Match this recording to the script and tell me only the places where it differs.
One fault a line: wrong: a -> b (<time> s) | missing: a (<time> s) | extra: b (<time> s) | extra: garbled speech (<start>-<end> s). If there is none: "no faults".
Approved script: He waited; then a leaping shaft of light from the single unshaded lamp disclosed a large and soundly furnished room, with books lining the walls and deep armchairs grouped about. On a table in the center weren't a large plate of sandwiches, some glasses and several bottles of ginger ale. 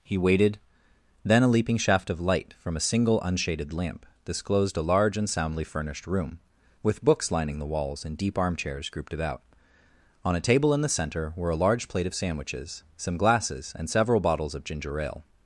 wrong: the -> a (2.8 s)
wrong: weren't -> were (11.3 s)